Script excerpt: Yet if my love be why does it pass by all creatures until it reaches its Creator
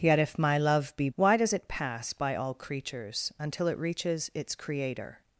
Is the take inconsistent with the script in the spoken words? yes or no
no